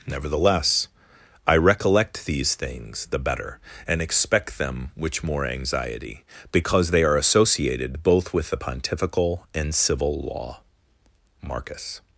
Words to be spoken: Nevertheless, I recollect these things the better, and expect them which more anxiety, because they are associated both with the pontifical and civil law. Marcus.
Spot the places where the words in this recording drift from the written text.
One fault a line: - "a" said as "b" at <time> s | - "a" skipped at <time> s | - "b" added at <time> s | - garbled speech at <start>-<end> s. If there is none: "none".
none